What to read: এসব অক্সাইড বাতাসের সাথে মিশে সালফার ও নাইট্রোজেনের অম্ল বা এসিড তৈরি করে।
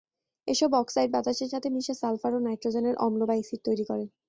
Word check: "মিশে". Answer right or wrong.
right